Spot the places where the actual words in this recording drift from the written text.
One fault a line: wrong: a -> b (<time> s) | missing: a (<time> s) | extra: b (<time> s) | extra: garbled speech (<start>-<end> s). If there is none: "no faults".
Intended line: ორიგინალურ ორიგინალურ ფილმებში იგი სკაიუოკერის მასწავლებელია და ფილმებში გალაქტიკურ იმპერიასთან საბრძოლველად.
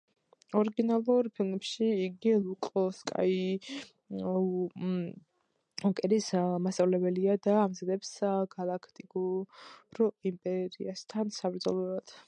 missing: ორიგინალურ (1.3 s)
extra: ლუკ (2.4 s)
wrong: ფილმებში -> ამზადებს (7.6 s)